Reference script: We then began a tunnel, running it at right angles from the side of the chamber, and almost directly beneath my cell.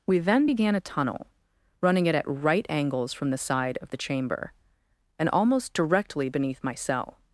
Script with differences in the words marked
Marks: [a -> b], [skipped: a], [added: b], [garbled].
We then began a tunnel, running it at right angles from the side of the chamber, and almost directly beneath my cell.